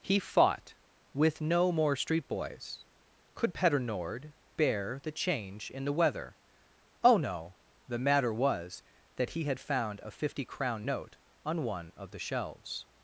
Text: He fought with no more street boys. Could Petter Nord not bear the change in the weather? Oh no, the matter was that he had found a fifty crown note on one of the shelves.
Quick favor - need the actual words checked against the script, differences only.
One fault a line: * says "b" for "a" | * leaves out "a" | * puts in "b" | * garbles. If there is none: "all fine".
* leaves out "not"